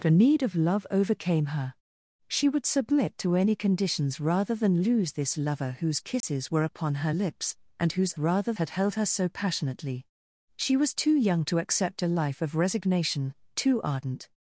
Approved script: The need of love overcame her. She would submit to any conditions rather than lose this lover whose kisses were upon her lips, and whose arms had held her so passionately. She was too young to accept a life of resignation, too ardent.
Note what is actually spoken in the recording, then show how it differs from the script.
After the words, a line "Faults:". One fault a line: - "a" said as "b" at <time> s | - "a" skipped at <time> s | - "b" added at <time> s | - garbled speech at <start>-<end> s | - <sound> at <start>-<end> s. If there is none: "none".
The need of love overcame her. She would submit to any conditions rather than lose this lover whose kisses were upon her lips, and whose rather had held her so passionately. She was too young to accept a life of resignation, too ardent.
Faults:
- dropout at 6.2-6.2 s
- "arms" said as "rather" at 8.2 s